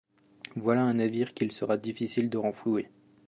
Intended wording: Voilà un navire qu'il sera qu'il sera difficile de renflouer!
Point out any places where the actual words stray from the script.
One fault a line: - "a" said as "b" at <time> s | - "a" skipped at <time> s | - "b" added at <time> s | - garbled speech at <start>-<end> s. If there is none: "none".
- "qu'il sera" skipped at 1.8 s